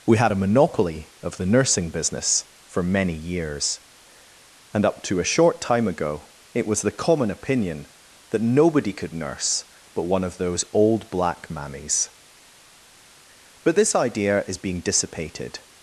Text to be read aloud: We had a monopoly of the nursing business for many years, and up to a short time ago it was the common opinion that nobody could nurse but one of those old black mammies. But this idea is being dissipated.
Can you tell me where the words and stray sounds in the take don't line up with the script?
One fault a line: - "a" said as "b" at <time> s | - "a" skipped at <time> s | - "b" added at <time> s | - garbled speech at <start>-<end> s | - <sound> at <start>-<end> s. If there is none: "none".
none